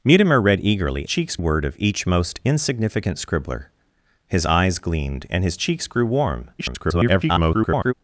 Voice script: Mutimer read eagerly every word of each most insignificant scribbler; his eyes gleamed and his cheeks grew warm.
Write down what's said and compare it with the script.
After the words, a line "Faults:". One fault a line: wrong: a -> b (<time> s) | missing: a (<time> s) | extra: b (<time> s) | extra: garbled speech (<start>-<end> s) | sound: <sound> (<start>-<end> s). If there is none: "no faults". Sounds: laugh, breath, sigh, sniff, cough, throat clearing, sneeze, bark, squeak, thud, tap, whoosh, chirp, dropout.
Mutimer read eagerly cheeks word of each most insignificant scribbler; his eyes gleamed and his cheeks grew warm. [garbled]
Faults:
wrong: every -> cheeks (1.1 s)
extra: garbled speech (6.6-7.9 s)